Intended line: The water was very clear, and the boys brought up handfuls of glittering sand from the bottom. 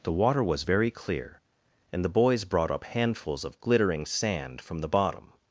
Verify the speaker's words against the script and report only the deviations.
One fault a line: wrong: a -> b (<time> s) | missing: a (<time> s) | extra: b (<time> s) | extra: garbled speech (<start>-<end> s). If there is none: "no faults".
no faults